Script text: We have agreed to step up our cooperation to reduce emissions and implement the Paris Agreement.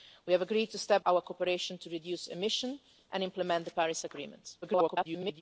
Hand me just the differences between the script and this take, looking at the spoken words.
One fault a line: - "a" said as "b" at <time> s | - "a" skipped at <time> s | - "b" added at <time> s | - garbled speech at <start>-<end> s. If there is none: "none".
- "up" skipped at 1.1 s
- garbled speech at 4.6-5.4 s